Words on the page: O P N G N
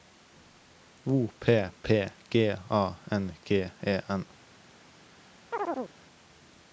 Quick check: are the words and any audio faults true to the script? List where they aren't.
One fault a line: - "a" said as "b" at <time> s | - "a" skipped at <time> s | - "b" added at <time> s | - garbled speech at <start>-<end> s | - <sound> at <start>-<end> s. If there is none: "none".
- "P G A" added at 1.8 s
- "E" added at 3.8 s
- chirp at 5.5-5.9 s